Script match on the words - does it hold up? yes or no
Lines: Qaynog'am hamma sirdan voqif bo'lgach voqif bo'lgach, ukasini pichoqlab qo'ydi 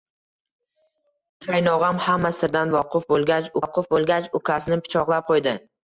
yes